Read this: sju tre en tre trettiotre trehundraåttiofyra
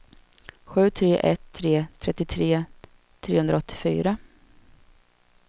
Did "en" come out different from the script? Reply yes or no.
yes